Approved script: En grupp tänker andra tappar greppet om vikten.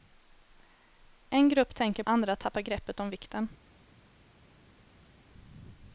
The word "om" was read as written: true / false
true